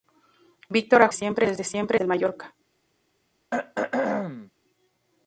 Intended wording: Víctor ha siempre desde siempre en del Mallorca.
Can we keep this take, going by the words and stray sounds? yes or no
no